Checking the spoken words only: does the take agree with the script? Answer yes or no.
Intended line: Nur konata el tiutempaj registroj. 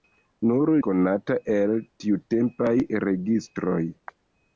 yes